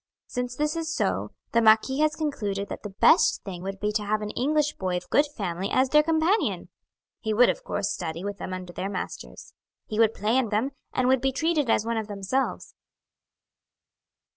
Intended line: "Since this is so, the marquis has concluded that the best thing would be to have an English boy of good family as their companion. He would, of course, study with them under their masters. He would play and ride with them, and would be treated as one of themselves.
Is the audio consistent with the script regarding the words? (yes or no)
no